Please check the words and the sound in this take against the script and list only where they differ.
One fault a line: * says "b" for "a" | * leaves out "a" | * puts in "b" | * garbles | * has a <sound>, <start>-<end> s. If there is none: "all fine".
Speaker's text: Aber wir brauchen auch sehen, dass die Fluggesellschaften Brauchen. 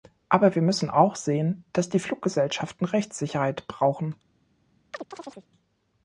* says "müssen" for "brauchen"
* puts in "Rechtssicherheit"
* has a chirp, 4.9-5.5 s